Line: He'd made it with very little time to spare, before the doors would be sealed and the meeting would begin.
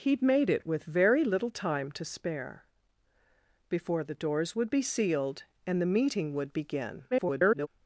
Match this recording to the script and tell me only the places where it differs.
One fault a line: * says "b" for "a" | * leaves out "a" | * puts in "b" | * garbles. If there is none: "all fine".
* garbles